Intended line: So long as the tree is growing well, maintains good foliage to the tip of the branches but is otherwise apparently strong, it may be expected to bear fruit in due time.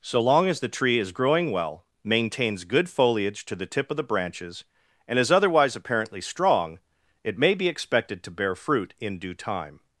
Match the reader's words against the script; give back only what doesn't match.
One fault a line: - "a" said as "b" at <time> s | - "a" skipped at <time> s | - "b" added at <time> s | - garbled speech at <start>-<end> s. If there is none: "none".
- "but" said as "and" at 5.1 s